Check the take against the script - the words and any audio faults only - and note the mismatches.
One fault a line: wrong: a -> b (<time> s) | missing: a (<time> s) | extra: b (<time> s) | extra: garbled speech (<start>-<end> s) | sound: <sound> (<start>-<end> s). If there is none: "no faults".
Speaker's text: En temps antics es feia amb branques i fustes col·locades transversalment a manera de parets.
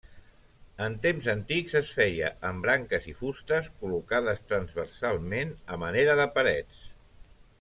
no faults